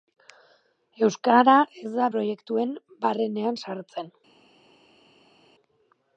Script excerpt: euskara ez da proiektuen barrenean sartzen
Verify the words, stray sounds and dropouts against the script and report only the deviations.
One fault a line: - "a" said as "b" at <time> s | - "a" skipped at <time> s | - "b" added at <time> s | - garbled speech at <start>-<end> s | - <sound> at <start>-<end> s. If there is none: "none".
none